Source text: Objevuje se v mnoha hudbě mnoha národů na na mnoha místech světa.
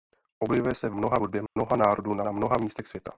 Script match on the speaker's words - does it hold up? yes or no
yes